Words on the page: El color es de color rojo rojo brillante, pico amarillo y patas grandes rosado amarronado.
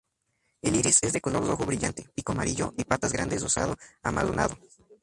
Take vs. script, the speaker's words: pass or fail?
fail